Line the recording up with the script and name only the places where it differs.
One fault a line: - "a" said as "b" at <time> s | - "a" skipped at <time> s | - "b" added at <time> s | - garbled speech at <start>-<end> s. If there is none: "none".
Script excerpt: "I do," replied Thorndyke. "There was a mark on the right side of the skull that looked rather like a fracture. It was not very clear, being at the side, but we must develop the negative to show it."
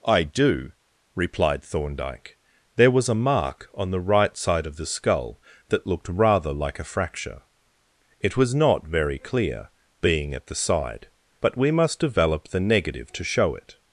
none